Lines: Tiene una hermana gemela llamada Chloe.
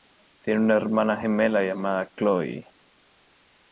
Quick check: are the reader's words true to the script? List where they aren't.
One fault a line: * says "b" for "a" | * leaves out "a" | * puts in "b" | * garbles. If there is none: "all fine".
all fine